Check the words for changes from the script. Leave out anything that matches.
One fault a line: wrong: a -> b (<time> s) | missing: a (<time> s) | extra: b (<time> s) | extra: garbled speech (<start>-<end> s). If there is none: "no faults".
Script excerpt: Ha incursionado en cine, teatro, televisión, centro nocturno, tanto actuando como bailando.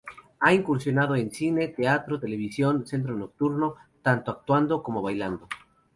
no faults